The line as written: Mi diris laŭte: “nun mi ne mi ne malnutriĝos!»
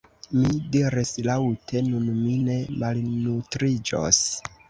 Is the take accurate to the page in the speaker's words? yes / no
no